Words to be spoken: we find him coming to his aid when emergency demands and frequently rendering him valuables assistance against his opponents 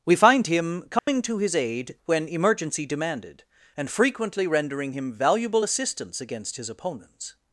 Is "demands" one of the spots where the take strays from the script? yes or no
yes